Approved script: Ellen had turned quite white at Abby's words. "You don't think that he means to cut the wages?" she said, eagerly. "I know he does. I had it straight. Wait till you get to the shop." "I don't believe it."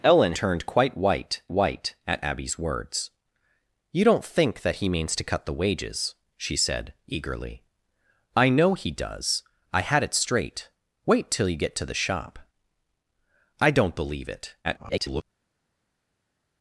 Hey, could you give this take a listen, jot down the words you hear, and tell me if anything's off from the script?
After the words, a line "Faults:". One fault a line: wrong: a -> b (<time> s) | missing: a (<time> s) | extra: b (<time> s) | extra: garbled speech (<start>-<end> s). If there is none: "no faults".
Ellen turned quite white white at Abby's words. "You don't think that he means to cut the wages?" she said, eagerly. "I know he does. I had it straight. Wait till you get to the shop." "I don't believe it." [garbled]
Faults:
missing: had (0.3 s)
extra: white (1.5 s)
extra: garbled speech (14.6-15.2 s)